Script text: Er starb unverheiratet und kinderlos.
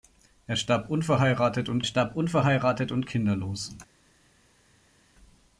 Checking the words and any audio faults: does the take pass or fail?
fail